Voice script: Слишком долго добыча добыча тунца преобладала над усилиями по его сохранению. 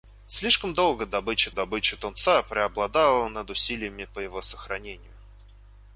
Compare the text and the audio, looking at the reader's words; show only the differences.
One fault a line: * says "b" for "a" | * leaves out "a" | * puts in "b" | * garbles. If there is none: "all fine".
all fine